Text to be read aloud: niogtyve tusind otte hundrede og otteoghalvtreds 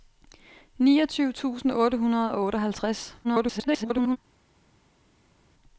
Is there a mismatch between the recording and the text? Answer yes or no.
yes